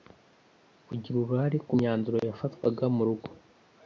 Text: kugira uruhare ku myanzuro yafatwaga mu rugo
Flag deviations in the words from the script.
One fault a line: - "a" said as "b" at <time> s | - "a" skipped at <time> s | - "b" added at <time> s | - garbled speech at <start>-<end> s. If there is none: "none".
none